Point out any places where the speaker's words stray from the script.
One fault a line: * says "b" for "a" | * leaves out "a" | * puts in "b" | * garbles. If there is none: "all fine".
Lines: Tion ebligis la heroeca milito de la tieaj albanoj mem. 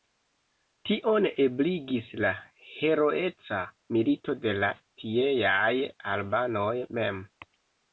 all fine